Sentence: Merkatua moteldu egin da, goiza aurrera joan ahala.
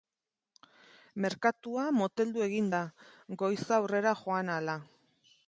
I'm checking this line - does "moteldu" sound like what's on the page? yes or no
yes